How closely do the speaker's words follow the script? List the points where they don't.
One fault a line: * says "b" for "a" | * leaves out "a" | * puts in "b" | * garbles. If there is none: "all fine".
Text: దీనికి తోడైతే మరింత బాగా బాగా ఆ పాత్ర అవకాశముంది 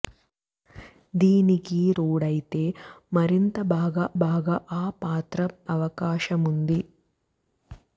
all fine